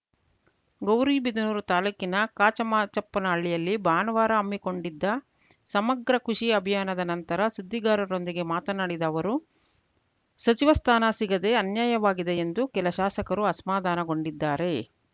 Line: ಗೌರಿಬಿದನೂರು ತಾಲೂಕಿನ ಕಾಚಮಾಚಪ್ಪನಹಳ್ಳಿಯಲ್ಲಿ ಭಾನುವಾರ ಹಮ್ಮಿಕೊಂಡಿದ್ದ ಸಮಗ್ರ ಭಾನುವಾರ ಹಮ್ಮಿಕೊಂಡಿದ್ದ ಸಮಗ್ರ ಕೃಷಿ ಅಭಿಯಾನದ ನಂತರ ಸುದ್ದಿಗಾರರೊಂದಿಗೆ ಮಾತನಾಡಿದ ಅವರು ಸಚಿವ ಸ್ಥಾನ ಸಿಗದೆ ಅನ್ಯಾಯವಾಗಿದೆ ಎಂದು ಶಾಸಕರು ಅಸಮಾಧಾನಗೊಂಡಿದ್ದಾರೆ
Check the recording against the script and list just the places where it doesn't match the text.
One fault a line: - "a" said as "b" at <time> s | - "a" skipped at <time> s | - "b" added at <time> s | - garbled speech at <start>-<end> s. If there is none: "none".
- "ಭಾನುವಾರ ಹಮ್ಮಿಕೊಂಡಿದ್ದ ಸಮಗ್ರ" skipped at 6.2 s
- "ಕೆಲ" added at 12.8 s